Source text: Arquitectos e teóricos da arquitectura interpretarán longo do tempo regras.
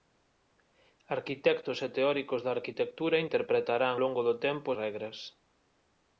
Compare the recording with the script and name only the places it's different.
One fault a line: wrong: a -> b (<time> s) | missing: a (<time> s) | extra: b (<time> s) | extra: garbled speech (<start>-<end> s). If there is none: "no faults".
no faults